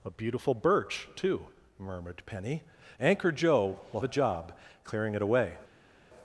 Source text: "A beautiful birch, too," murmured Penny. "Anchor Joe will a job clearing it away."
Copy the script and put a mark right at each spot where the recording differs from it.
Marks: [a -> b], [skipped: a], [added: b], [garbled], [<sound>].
"A beautiful birch, too," murmured Penny. "Anchor Joe will a job clearing it away."